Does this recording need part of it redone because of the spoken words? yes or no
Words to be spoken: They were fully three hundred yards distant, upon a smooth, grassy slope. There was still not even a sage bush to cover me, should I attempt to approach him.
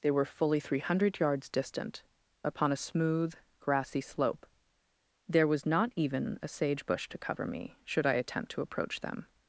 yes